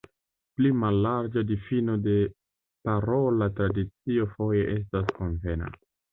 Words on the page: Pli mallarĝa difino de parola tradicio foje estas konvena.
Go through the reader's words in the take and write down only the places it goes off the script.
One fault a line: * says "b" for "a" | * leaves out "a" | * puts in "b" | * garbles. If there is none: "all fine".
all fine